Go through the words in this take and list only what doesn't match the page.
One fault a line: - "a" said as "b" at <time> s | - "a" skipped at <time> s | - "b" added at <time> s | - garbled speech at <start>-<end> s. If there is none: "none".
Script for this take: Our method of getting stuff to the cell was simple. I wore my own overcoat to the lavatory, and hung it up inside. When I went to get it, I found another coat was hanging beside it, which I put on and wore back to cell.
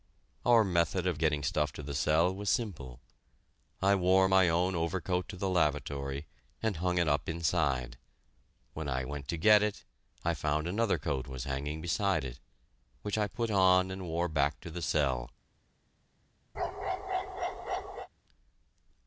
- "the" added at 14.7 s